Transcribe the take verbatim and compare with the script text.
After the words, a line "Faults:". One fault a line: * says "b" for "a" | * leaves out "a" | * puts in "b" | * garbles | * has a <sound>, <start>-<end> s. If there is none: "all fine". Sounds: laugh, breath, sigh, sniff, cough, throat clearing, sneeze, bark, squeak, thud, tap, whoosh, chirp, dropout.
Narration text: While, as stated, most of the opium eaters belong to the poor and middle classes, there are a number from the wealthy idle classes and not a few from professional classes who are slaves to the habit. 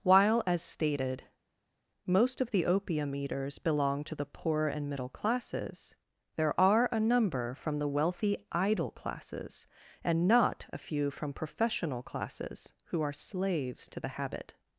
While, as stated, most of the opium eaters belong to the poor and middle classes, there are a number from the wealthy idle classes and not a few from professional classes who are slaves to the habit.
Faults:
all fine